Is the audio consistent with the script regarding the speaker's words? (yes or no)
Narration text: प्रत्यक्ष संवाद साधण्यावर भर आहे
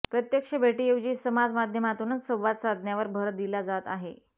no